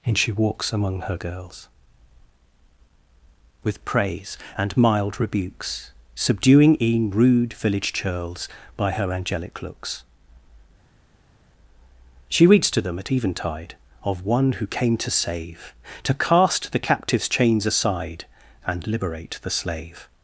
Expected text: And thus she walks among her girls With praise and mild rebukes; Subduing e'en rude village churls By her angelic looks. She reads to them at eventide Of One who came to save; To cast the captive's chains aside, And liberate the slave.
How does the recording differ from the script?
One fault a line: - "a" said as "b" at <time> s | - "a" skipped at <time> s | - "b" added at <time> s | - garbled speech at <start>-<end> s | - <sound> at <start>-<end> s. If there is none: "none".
- "thus" skipped at 0.2 s